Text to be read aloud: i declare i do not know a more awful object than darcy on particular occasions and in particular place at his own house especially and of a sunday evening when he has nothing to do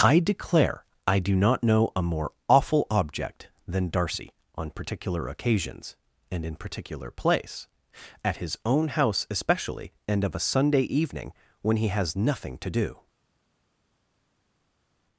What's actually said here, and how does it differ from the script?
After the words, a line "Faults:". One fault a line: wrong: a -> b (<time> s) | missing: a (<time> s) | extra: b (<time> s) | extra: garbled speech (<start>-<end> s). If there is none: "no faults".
i declare i do not know a more awful object than darcy on particular occasions and in particular place at his own house especially and of a sunday evening when he has nothing to do
Faults:
no faults